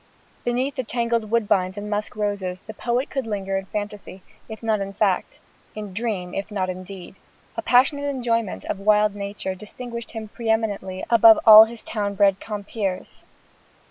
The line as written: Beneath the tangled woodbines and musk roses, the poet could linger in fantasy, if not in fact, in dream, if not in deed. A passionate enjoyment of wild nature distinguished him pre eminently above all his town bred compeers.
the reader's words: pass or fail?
pass